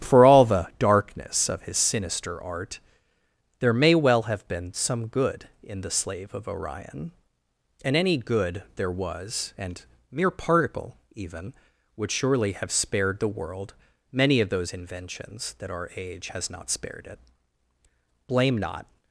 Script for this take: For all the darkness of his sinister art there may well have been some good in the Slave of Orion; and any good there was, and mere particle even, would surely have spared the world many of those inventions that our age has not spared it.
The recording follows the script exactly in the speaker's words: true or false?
false